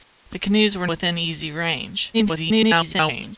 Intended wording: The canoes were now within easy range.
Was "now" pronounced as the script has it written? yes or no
no